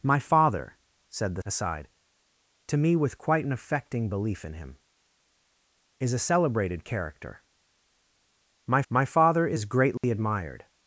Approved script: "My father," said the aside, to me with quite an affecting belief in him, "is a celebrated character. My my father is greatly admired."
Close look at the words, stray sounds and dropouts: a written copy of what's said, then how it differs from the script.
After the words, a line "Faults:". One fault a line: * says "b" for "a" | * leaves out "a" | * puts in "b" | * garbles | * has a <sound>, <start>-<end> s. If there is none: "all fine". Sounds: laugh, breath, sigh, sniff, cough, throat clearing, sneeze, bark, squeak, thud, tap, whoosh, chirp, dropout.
"My father," said the aside, to me with quite an affecting belief in him, "is a celebrated character. My my father is greatly admired."
Faults:
* has a dropout, 10.0-10.0 s